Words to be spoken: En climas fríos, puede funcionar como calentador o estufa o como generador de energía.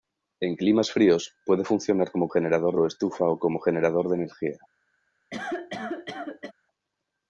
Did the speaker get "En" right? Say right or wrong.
right